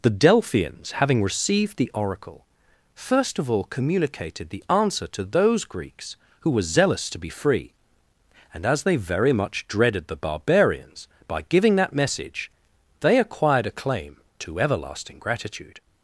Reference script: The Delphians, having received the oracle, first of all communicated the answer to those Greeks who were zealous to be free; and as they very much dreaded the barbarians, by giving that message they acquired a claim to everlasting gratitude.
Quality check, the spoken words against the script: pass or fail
pass